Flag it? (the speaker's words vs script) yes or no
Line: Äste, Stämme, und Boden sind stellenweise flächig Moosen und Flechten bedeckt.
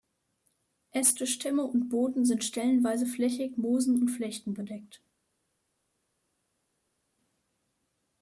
no